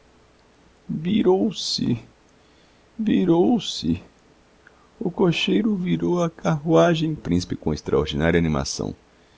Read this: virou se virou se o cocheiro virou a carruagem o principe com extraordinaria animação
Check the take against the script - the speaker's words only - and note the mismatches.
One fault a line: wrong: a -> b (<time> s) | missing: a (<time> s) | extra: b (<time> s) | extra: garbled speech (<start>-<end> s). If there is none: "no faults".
no faults